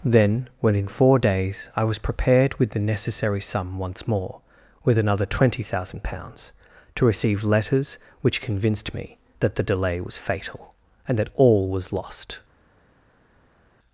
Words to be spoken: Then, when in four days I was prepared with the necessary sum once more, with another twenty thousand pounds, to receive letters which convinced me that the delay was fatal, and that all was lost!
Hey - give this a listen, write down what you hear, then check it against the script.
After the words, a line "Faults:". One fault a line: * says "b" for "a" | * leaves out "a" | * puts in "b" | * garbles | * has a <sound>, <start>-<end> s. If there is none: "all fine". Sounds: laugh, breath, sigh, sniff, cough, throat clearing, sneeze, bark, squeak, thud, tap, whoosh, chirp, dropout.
Then, when in four days I was prepared with the necessary sum once more, with another twenty thousand pounds, to receive letters which convinced me that the delay was fatal, and that all was lost!
Faults:
all fine